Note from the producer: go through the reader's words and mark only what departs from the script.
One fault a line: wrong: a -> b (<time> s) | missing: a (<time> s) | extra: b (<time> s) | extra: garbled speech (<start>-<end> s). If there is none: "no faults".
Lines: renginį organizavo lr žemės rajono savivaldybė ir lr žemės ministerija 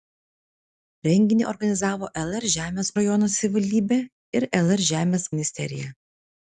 no faults